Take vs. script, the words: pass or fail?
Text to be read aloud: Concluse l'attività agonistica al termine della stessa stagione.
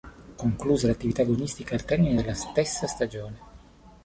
pass